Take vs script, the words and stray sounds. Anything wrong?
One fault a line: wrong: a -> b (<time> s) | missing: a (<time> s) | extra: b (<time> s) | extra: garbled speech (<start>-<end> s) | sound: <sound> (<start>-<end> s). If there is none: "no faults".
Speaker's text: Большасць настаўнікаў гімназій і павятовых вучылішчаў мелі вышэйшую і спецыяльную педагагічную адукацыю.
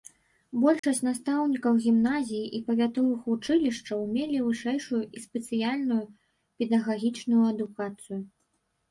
sound: dropout (0.8-0.8 s)